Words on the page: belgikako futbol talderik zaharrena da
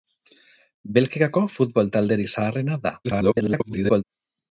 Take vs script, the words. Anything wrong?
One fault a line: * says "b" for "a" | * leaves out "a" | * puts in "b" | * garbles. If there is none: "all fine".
* garbles